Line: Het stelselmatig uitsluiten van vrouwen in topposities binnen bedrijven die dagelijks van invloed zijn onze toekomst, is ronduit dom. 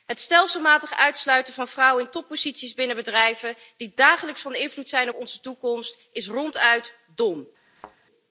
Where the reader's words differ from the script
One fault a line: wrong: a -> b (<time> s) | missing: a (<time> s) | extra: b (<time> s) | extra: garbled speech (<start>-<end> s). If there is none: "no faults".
no faults